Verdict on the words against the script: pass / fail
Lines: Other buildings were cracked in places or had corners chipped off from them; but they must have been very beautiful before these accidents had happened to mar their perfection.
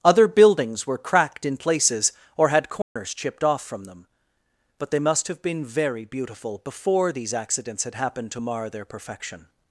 pass